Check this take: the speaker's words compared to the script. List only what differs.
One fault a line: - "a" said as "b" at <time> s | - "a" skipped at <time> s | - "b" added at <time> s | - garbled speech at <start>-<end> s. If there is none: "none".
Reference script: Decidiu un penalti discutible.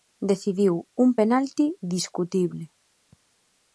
none